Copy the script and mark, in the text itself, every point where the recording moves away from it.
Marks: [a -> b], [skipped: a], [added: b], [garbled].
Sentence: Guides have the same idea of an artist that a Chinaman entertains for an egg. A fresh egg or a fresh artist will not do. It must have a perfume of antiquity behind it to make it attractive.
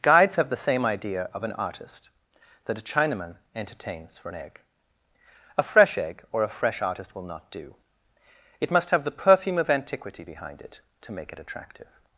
Guides have the same idea of an artist that a Chinaman entertains for an egg. A fresh egg or a fresh artist will not do. It must have [a -> the] perfume of antiquity behind it to make it attractive.